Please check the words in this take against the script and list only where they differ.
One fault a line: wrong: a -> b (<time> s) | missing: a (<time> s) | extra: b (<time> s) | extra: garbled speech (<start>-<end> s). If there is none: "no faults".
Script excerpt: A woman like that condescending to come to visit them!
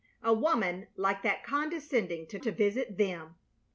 missing: come (2.4 s)